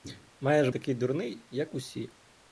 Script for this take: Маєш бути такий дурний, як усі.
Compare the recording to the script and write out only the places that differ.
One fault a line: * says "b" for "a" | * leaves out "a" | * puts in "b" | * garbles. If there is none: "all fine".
* leaves out "бути"